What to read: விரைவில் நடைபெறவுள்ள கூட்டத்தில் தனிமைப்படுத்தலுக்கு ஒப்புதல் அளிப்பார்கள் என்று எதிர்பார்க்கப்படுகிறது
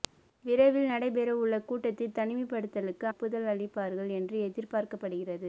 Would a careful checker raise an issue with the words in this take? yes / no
no